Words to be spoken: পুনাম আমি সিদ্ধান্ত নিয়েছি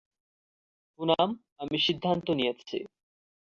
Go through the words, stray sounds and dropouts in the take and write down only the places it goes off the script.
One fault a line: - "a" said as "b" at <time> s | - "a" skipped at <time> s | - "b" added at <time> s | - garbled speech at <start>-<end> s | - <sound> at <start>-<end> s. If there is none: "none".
none